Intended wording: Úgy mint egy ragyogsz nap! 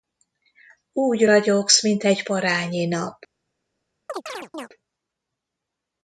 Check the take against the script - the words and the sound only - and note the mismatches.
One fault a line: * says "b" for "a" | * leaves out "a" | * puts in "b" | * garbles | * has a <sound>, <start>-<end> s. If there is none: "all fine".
* puts in "ragyogsz"
* says "parányi" for "ragyogsz"
* has a chirp, 4.1-4.7 s